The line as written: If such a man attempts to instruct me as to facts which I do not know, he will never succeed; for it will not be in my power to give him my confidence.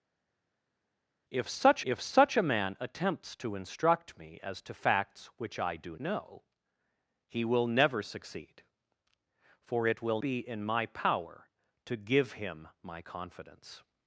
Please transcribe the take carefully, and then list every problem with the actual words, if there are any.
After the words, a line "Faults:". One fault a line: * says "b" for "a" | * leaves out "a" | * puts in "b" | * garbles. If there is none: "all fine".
If such if such a man attempts to instruct me as to facts which I do know, he will never succeed; for it will be in my power to give him my confidence.
Faults:
* puts in "if such"
* leaves out "not"
* leaves out "not"